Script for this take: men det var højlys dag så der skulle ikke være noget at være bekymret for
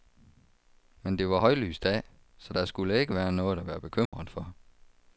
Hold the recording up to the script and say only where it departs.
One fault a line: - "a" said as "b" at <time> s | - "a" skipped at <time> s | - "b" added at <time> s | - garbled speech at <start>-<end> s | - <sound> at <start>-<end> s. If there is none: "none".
- dropout at 4.1-4.1 s